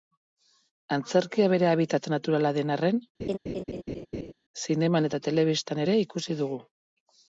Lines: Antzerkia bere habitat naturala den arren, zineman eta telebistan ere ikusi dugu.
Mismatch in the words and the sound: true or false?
true